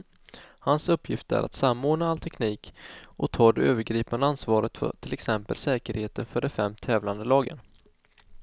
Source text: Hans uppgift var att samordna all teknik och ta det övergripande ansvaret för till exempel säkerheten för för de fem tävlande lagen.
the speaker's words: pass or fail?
fail